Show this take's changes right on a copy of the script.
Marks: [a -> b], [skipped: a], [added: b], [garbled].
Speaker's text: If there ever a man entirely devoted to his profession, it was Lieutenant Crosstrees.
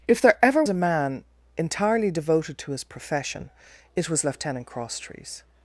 If there ever a man entirely devoted to his profession, it was Lieutenant Crosstrees.